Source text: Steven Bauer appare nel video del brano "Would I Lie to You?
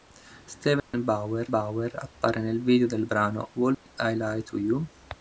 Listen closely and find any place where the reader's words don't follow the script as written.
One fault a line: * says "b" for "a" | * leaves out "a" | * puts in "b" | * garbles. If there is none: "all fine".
* puts in "Bauer"